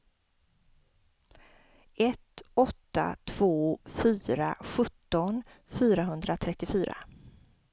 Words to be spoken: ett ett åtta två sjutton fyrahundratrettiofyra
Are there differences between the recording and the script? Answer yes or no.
yes